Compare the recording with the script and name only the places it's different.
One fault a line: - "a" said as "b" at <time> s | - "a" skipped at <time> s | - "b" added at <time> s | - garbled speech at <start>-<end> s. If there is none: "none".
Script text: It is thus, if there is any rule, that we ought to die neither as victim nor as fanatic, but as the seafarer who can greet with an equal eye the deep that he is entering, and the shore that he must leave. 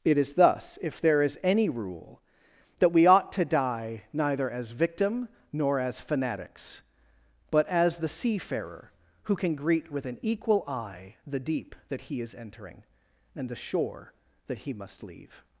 - "fanatic" said as "fanatics" at 6.0 s